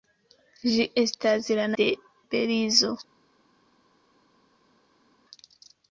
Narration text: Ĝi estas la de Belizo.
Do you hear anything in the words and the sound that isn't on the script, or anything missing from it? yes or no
no